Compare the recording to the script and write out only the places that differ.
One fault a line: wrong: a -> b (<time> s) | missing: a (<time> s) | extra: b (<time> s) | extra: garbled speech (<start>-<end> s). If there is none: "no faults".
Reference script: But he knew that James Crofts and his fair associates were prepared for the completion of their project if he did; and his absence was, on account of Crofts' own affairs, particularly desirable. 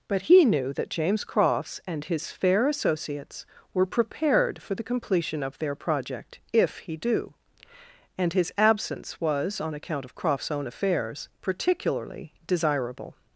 wrong: did -> do (7.0 s)